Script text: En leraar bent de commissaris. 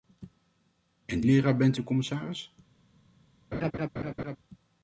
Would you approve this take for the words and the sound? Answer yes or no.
no